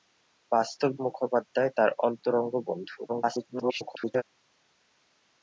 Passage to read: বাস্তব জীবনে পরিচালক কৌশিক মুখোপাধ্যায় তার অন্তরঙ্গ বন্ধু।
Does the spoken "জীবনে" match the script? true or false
false